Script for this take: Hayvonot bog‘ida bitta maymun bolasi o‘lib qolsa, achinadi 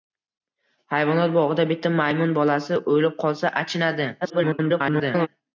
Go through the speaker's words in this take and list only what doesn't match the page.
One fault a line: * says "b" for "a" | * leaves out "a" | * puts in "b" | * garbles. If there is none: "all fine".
* garbles